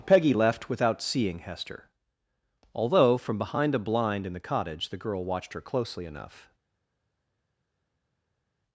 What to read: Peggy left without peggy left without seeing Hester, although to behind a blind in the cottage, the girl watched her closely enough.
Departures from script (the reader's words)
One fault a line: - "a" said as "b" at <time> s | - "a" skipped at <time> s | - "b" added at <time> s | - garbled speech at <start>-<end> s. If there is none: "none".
- "peggy left without" skipped at 1.0 s
- "to" said as "from" at 3.2 s